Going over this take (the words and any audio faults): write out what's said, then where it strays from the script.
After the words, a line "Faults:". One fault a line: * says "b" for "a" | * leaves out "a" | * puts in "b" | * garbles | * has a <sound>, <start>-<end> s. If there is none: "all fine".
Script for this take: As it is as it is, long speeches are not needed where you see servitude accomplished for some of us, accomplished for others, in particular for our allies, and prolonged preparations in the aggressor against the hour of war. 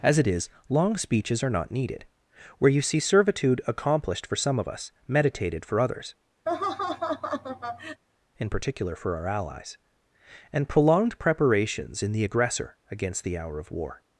As it is, long speeches are not needed where you see servitude accomplished for some of us, meditated for others, in particular for our allies, and prolonged preparations in the aggressor against the hour of war.
Faults:
* leaves out "as it is"
* says "meditated" for "accomplished"
* has a laugh, 6.5-8.0 s